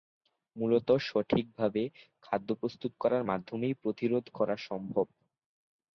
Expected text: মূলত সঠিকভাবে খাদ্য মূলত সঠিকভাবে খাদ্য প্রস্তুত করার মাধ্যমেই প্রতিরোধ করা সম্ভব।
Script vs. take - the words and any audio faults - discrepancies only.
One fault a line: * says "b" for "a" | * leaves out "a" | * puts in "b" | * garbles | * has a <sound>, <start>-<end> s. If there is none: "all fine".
* leaves out "মূলত সঠিকভাবে খাদ্য"